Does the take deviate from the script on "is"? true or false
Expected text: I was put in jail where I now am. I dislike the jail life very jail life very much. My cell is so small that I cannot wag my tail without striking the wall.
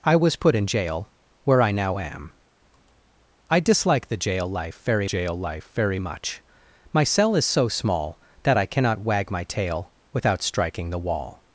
false